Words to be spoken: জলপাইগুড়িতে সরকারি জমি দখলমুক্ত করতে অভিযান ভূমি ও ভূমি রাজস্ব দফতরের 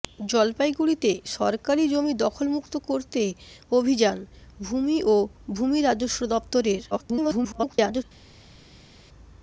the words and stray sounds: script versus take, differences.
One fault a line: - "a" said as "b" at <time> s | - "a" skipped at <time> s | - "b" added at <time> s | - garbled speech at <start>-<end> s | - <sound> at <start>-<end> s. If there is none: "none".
- garbled speech at 6.9-8.0 s